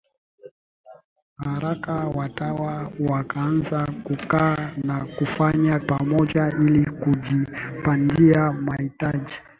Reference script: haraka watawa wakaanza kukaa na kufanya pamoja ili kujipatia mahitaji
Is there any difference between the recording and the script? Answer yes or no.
no